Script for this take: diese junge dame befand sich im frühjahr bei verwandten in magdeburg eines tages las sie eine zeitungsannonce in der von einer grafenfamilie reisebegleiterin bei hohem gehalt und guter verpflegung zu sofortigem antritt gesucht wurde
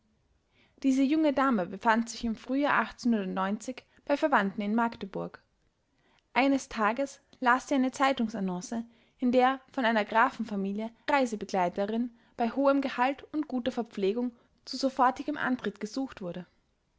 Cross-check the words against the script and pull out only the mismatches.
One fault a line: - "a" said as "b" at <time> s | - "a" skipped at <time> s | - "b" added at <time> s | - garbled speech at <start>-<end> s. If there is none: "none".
none